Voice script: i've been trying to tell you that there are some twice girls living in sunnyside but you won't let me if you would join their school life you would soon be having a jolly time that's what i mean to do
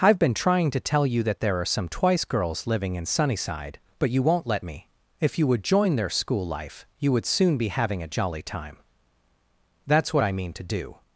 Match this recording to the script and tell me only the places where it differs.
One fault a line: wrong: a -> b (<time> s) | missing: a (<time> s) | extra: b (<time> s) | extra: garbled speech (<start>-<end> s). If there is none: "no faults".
no faults